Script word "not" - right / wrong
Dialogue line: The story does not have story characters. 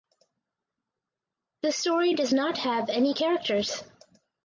right